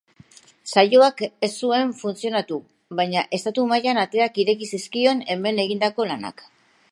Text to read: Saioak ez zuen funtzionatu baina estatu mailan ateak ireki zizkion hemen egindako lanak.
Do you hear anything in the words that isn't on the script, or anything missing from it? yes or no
no